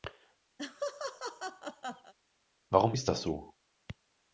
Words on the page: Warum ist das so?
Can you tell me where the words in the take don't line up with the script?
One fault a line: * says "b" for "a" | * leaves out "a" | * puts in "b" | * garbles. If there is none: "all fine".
all fine